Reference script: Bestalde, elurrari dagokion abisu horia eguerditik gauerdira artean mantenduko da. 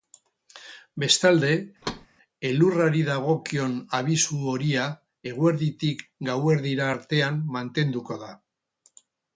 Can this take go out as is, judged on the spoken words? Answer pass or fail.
pass